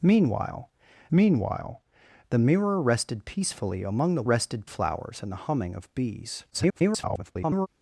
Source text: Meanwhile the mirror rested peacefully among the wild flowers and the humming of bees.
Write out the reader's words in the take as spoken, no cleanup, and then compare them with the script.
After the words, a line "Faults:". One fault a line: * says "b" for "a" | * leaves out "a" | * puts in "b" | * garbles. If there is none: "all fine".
Meanwhile meanwhile the mirror rested peacefully among the rested flowers and the humming of bees. [garbled]
Faults:
* puts in "meanwhile"
* says "rested" for "wild"
* garbles